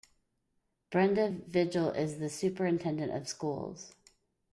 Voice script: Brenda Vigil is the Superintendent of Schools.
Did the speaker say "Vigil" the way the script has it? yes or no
yes